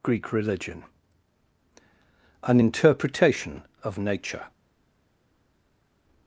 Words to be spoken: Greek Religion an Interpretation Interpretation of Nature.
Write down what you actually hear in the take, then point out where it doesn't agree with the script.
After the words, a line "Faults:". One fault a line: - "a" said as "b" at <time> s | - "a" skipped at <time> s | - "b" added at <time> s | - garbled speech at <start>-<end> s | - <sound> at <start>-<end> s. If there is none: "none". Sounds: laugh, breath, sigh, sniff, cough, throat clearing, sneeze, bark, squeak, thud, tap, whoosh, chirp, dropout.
Greek Religion an Interpretation of Nature.
Faults:
- "Interpretation" skipped at 3.6 s